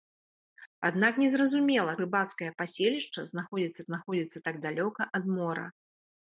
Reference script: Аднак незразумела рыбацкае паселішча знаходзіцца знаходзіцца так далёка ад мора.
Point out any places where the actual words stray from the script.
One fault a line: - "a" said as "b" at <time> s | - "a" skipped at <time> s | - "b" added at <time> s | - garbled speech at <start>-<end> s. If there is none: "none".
none